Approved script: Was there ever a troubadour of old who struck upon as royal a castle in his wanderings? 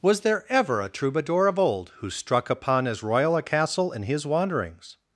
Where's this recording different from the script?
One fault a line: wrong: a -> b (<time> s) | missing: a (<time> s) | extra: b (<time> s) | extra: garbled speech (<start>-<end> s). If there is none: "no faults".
no faults